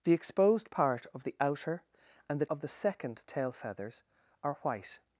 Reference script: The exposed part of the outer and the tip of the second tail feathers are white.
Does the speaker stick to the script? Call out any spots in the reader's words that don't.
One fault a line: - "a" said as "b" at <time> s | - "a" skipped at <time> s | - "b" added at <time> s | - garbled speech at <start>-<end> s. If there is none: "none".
- "tip" skipped at 2.5 s